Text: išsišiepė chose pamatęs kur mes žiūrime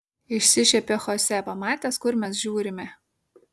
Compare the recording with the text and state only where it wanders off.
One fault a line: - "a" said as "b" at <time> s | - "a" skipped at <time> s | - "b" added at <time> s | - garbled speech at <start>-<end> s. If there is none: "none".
none